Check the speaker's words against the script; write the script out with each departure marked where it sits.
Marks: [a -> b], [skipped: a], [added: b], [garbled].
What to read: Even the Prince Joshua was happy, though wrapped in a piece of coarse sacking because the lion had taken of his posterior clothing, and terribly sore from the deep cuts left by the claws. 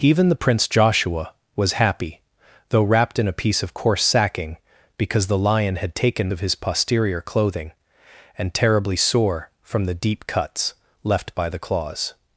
Even the Prince Joshua was happy, though wrapped in a piece of coarse sacking because the lion had taken of his posterior clothing, and terribly sore from the deep cuts left by the claws.